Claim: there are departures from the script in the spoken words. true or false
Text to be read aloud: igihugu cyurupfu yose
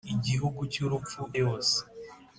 false